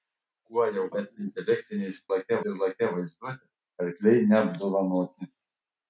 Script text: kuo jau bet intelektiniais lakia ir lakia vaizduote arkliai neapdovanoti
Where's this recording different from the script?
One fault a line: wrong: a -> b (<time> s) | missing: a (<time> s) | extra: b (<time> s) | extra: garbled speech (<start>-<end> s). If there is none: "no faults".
no faults